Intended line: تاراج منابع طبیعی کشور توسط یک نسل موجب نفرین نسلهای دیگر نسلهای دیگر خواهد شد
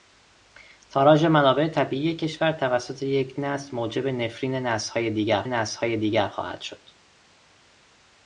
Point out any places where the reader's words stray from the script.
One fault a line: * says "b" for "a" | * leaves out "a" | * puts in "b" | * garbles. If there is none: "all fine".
all fine